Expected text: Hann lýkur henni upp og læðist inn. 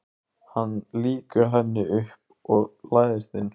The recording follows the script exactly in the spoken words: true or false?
true